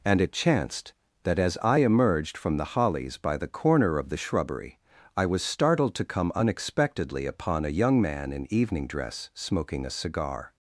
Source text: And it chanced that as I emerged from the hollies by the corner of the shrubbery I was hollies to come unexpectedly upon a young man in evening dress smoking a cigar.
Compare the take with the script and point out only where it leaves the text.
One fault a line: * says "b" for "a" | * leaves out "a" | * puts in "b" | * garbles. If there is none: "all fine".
* says "startled" for "hollies"